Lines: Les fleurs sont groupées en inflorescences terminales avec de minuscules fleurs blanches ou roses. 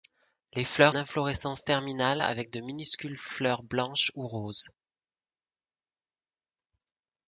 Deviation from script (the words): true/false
true